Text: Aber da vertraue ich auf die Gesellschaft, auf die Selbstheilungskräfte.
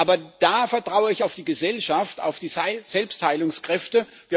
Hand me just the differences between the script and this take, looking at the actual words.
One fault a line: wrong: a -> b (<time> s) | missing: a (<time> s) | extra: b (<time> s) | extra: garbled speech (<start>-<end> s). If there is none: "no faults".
no faults